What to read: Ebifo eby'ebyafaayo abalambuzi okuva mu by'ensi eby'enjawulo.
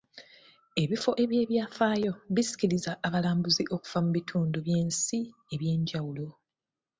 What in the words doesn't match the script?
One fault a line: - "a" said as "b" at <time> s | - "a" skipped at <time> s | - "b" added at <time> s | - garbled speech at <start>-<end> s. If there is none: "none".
- "bisikiriza" added at 2.3 s
- "bitundu" added at 4.2 s